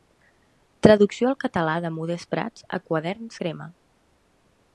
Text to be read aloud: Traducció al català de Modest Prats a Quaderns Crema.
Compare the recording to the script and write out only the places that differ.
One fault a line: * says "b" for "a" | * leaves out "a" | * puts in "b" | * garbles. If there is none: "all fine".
all fine